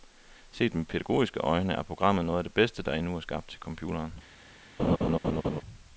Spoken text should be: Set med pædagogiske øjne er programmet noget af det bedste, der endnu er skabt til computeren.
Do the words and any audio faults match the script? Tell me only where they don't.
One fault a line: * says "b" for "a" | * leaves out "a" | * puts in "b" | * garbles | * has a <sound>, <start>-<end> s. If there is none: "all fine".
* has a laugh, 4.8-5.6 s